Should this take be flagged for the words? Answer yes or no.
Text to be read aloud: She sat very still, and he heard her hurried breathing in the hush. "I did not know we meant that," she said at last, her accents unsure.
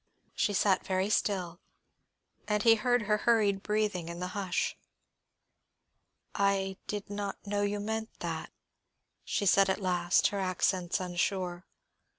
yes